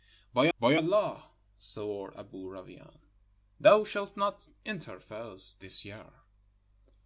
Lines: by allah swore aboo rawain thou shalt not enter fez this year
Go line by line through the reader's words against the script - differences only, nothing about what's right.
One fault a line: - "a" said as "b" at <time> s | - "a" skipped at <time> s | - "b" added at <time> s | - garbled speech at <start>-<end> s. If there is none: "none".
- "by" added at 0.6 s